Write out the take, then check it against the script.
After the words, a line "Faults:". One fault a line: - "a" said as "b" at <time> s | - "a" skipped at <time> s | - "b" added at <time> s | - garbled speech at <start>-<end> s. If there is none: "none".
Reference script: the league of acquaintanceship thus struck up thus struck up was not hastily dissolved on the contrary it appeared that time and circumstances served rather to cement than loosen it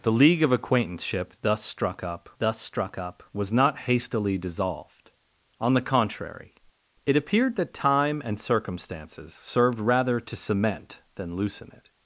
the league of acquaintanceship thus struck up thus struck up was not hastily dissolved on the contrary it appeared that time and circumstances served rather to cement than loosen it
Faults:
none